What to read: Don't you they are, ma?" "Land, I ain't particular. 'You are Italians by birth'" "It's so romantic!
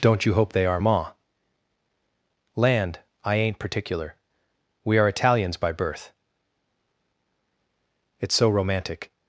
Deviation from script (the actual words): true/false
true